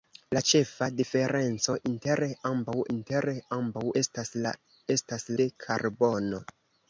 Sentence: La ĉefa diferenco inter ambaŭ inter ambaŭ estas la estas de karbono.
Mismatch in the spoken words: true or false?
false